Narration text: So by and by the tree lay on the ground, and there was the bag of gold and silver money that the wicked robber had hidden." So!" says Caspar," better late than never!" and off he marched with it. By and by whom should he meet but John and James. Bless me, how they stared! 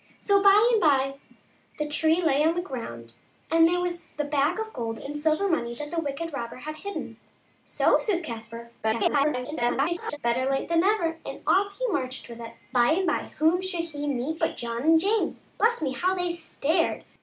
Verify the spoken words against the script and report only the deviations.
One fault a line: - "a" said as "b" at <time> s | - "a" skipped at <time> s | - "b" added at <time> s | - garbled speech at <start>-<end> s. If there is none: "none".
- garbled speech at 8.8-10.2 s